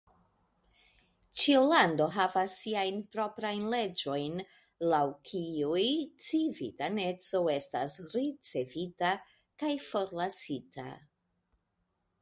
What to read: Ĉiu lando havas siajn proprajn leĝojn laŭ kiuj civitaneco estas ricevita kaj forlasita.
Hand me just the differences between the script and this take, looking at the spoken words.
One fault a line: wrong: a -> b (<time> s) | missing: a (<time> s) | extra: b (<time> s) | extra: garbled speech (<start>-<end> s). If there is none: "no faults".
no faults